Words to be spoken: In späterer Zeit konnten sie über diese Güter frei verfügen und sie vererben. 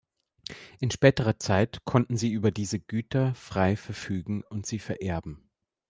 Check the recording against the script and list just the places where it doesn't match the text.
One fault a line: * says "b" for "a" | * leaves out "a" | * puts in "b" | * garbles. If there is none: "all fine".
all fine